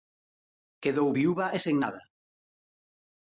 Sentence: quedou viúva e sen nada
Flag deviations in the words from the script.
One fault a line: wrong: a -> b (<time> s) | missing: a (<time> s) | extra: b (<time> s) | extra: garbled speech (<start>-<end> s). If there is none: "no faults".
no faults